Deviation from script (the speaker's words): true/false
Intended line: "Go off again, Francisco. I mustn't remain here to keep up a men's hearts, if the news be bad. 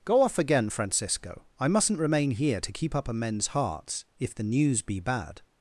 false